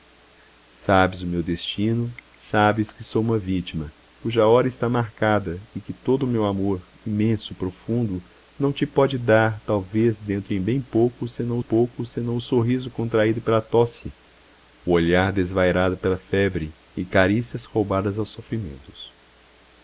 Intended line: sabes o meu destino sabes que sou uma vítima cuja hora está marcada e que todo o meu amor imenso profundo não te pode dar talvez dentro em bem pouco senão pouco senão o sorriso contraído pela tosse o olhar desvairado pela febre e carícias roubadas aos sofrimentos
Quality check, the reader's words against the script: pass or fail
pass